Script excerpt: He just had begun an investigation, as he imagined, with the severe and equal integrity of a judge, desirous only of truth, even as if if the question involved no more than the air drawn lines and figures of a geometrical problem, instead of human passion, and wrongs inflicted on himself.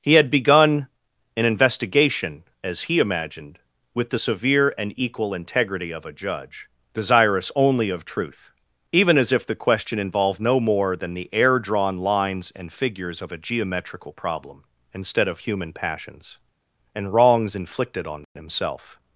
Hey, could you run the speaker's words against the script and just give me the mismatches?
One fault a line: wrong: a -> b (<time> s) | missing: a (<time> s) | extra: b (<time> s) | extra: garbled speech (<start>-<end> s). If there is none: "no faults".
missing: just (0.1 s)
missing: if (9.5 s)
wrong: passion -> passions (15.7 s)